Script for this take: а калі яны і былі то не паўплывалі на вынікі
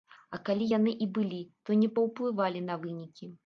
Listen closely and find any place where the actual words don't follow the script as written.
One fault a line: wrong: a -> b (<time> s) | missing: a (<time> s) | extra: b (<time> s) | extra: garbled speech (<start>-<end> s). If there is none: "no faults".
no faults